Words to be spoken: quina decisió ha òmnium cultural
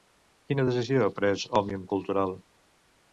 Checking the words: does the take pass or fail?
fail